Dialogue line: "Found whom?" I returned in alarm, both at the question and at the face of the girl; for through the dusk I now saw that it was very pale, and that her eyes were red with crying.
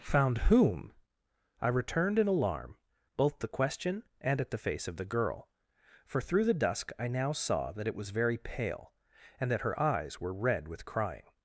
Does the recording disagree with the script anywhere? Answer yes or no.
yes